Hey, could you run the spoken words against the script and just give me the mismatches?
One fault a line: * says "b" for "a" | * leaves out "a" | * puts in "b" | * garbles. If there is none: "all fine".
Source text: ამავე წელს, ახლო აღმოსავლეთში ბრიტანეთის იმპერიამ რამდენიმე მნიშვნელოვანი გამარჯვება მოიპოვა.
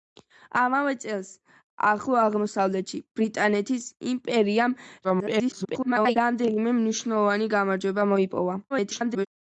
* garbles
* garbles